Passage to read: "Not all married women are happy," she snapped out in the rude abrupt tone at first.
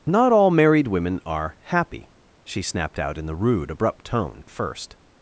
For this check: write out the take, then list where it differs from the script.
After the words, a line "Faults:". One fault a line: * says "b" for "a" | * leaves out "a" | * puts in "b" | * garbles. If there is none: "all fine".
"Not all married women are happy," she snapped out in the rude abrupt tone at first.
Faults:
all fine